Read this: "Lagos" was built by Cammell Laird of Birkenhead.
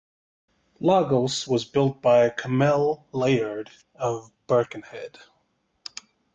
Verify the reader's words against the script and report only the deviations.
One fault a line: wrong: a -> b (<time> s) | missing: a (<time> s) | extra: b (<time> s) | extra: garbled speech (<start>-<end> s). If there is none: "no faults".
no faults